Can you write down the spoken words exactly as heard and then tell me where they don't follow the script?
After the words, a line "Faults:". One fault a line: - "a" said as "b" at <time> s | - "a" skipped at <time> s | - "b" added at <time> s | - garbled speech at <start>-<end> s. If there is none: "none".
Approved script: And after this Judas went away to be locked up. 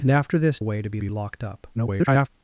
And after this Away to be be locked up. [garbled]
Faults:
- "Judas went" skipped at 0.6 s
- "be" added at 1.0 s
- garbled speech at 1.7-2.3 s